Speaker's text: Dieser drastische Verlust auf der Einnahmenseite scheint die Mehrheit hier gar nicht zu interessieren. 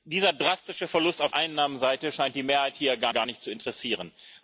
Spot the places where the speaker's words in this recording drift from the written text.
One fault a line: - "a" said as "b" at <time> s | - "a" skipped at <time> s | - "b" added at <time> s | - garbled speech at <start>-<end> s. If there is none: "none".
- "der" skipped at 1.3 s
- "gar" added at 3.1 s